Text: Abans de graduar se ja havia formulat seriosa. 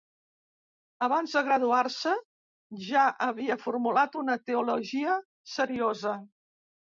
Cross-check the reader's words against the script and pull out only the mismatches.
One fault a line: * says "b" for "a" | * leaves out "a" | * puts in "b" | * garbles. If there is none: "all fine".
* puts in "una teologia"